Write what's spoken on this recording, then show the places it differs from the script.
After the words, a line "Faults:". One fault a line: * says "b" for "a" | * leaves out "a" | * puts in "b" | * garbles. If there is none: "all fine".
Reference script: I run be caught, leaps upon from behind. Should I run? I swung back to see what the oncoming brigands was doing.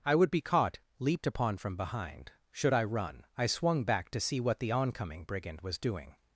I would be caught, leaped upon from behind. Should I run? I swung back to see what the oncoming brigand was doing.
Faults:
* says "would" for "run"
* says "leaped" for "leaps"
* says "brigand" for "brigands"